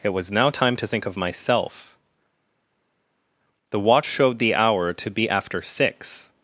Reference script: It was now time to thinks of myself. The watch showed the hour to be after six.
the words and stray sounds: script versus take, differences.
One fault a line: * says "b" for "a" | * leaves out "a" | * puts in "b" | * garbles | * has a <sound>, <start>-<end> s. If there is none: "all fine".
* says "think" for "thinks"